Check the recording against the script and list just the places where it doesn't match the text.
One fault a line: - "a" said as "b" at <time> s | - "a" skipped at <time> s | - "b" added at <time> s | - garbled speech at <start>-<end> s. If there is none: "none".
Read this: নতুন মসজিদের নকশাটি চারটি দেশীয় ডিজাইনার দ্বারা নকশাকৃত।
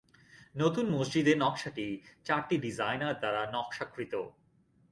- "দেশীয়" skipped at 2.6 s